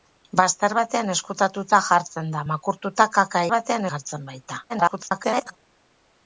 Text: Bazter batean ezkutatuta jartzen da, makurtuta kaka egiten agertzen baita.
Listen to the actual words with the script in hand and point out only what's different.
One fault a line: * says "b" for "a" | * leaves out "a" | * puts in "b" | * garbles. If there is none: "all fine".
* says "batean" for "egiten"
* garbles